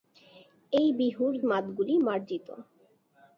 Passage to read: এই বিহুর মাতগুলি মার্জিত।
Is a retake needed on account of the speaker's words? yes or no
no